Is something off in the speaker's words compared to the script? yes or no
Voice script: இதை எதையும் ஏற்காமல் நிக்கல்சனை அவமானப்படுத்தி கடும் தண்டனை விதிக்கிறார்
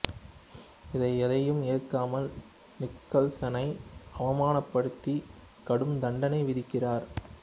no